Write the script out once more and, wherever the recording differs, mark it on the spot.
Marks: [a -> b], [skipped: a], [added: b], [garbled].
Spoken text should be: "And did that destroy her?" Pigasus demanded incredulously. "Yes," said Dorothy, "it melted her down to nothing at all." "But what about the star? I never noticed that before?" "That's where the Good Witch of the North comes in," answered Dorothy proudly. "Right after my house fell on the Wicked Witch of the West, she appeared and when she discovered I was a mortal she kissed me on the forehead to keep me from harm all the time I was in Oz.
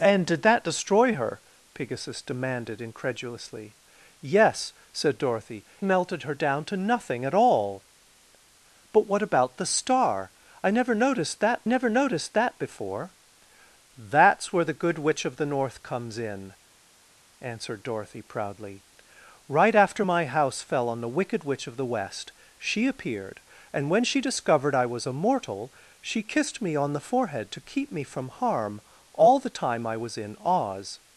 "And did that destroy her?" Pigasus demanded incredulously. "Yes," said Dorothy, [skipped: "it] melted her down to nothing at all." "But what about the star? I never noticed that [added: never noticed that] before?" "That's where the Good Witch of the North comes in," answered Dorothy proudly. "Right after my house fell on the Wicked Witch of the West, she appeared and when she discovered I was a mortal she kissed me on the forehead to keep me from harm all the time I was in Oz.